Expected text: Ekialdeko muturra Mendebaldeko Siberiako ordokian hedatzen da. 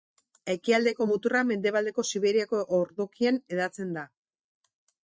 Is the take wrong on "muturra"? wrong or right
right